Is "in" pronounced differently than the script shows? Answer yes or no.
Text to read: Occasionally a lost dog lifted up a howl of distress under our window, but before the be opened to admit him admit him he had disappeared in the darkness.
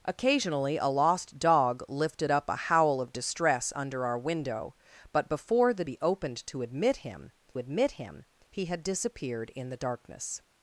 no